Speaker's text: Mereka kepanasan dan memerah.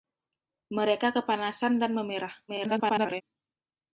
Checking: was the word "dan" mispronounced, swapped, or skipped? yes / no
no